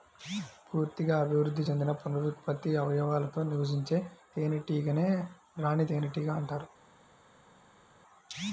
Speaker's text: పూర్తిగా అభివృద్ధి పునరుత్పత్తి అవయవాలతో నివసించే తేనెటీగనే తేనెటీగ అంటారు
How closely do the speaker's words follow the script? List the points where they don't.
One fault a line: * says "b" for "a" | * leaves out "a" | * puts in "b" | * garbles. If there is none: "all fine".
* puts in "చెందిన"
* puts in "రాణి"